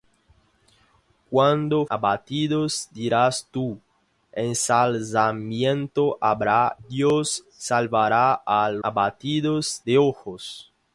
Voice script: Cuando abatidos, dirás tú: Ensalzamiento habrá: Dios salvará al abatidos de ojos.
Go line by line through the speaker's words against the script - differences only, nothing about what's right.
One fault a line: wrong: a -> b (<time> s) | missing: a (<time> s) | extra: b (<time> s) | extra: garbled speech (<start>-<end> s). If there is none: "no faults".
no faults